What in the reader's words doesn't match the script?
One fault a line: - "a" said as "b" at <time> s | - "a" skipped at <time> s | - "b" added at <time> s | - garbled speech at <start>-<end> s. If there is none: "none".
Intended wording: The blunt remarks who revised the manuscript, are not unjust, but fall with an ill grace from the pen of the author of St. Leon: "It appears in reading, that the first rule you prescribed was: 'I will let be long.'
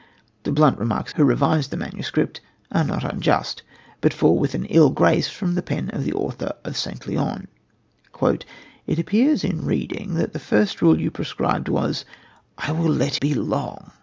none